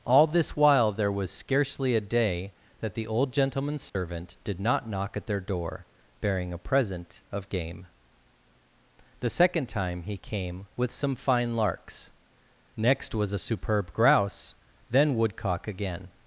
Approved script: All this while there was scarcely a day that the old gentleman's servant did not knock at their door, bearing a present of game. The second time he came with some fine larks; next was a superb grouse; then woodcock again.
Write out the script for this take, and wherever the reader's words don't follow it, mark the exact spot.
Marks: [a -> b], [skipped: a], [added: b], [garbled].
All this while there was scarcely a day that the old gentleman's servant did not knock at their door, bearing a present of game. The second time he came with some fine larks; next was a superb grouse; then woodcock again.